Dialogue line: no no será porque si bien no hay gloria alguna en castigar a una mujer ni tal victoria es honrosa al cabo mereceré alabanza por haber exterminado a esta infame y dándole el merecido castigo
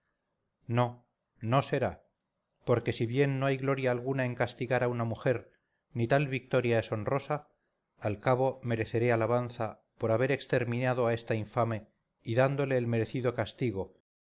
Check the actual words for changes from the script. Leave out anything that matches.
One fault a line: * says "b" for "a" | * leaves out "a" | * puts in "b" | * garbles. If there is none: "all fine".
all fine